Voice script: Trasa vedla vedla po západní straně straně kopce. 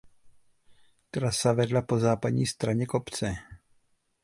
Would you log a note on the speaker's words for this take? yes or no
yes